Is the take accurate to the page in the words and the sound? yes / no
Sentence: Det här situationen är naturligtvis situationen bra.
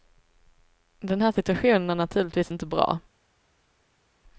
no